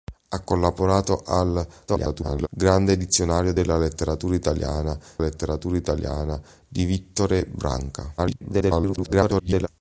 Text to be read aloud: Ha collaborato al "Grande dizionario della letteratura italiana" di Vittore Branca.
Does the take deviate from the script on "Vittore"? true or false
false